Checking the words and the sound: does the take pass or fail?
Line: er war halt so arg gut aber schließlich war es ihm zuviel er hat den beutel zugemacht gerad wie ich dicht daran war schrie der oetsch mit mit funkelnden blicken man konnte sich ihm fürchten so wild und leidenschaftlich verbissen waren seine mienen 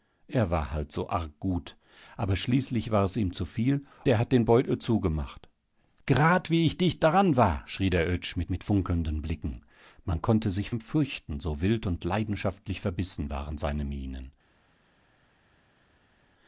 pass